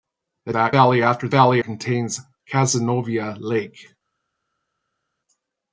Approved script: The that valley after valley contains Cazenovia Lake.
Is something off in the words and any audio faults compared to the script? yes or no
no